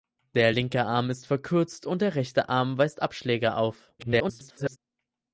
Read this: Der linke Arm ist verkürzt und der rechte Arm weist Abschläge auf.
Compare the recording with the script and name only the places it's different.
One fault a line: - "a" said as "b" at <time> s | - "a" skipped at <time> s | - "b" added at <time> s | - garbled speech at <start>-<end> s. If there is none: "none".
- garbled speech at 4.0-4.8 s